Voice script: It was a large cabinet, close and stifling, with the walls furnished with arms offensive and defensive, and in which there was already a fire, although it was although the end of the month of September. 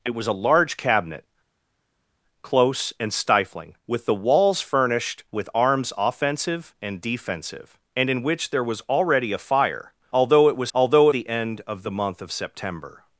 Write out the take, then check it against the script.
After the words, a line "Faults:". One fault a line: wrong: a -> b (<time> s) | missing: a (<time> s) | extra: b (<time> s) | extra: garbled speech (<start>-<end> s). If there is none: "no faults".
It was a large cabinet, close and stifling, with the walls furnished with arms offensive and defensive, and in which there was already a fire, although it was although the end of the month of September.
Faults:
no faults